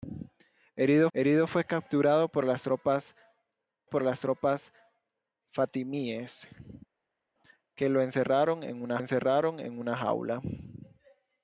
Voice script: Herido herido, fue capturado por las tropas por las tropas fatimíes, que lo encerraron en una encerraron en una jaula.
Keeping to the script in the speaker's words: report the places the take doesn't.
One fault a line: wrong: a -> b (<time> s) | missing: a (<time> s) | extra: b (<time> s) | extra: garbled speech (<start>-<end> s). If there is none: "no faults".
no faults